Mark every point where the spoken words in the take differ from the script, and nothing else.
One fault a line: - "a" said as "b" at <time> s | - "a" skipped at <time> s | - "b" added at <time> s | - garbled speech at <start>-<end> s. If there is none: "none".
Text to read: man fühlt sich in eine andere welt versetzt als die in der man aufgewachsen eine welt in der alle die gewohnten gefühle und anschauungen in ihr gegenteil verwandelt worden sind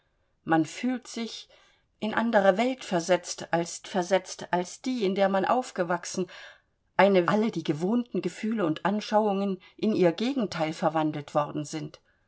- "eine" skipped at 2.1 s
- "versetzt als" added at 3.9 s
- "welt in der" skipped at 7.3 s